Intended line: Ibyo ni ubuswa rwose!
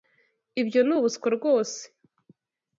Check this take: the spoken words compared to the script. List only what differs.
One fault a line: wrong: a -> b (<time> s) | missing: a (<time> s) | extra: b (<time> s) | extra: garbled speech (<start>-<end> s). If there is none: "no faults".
no faults